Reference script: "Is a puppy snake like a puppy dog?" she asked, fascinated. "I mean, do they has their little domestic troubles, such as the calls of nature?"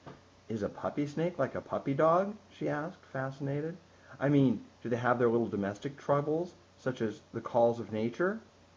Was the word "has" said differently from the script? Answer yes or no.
yes